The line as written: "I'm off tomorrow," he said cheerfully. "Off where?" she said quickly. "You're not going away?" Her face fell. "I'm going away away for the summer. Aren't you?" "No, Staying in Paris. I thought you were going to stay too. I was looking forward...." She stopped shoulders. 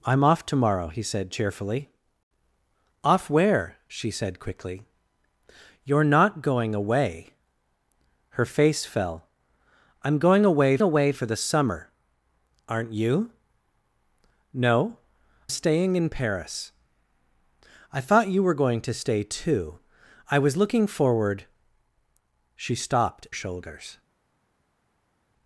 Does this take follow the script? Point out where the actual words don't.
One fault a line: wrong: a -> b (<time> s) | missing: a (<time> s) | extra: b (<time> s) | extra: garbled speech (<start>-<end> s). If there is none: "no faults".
no faults